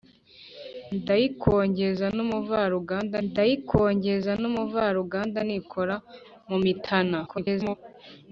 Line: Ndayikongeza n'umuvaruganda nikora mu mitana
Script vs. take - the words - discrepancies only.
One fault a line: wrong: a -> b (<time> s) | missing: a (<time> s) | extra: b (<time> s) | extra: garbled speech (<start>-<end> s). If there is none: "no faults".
extra: ndayikongeza n'umuvaruganda (3.3 s)
extra: garbled speech (7.2-7.8 s)